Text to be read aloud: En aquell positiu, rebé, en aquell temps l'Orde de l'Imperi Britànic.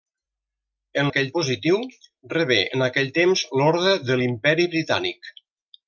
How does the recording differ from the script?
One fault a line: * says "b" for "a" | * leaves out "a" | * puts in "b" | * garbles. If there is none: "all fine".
all fine